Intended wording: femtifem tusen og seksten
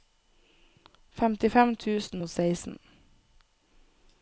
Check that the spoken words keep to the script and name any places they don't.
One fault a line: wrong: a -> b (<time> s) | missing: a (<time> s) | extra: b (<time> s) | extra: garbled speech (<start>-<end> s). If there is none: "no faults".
no faults